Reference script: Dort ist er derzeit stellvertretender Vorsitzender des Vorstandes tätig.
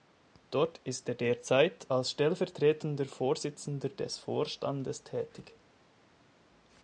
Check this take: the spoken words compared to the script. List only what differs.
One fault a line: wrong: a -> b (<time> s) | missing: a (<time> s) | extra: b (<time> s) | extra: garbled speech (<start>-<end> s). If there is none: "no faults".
extra: als (1.9 s)